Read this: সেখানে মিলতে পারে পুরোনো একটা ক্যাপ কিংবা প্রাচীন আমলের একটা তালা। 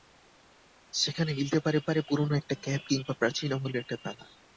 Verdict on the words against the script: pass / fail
fail